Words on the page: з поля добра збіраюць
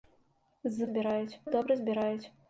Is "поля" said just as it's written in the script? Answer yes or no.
no